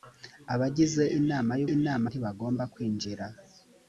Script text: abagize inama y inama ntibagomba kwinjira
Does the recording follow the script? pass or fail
pass